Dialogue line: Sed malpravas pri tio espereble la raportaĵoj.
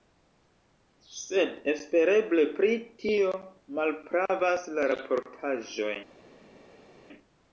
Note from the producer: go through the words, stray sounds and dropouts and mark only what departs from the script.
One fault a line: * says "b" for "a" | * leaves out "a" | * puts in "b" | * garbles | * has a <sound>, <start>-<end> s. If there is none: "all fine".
* says "espereble" for "malpravas"
* says "malpravas" for "espereble"